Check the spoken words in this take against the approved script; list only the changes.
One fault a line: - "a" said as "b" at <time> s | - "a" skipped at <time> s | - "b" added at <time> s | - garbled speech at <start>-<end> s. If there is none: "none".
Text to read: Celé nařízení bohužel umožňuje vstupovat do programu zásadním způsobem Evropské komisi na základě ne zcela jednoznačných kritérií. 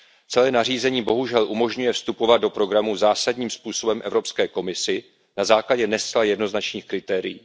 none